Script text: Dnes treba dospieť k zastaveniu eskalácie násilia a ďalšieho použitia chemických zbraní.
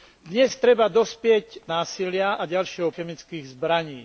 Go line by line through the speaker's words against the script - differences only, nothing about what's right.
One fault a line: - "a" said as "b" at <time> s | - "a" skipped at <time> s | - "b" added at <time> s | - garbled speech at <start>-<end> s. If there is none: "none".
- "zastaveniu eskalácie" skipped at 1.7 s
- "použitia" skipped at 2.9 s